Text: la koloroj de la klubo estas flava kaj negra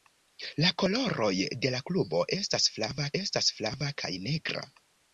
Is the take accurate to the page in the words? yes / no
no